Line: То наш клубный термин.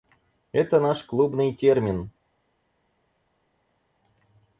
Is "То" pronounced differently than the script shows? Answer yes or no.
yes